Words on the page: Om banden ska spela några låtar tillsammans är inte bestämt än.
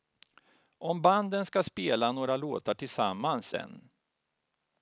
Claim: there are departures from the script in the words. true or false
true